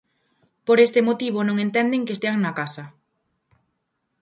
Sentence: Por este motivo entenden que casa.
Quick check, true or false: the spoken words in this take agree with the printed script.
false